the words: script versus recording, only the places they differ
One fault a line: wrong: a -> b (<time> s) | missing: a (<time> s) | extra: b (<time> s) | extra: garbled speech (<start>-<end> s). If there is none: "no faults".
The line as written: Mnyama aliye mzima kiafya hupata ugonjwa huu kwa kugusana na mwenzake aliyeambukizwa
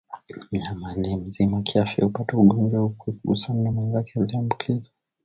no faults